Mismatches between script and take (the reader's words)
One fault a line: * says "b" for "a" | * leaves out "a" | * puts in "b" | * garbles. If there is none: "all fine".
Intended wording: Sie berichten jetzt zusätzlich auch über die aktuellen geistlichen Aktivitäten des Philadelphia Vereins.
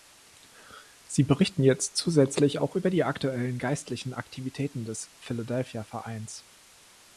all fine